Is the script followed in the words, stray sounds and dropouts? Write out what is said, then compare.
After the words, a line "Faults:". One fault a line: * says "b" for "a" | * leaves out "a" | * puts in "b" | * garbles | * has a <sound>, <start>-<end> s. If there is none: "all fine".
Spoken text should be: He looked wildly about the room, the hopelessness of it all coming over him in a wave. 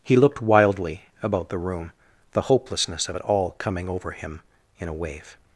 He looked wildly about the room, the hopelessness of it all coming over him in a wave.
Faults:
all fine